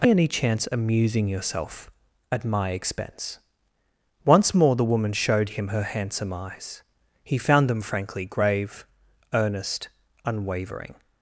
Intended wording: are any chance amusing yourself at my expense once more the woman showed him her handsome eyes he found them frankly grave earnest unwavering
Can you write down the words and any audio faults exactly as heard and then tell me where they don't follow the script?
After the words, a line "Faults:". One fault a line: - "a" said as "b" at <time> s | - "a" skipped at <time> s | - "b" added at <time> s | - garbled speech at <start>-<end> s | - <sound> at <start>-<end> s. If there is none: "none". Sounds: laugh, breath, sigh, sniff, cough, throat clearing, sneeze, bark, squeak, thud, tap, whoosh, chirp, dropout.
are any chance amusing yourself at my expense once more the woman showed him her handsome eyes he found them frankly grave earnest unwavering
Faults:
none